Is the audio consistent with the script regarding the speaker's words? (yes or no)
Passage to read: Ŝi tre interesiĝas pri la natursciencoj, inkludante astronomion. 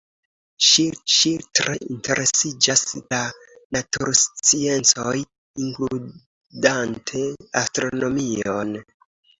no